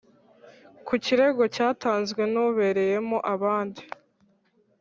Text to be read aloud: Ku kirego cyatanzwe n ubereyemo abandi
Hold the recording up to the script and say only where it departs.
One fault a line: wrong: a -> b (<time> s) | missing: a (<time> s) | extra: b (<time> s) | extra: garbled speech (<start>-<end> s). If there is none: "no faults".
no faults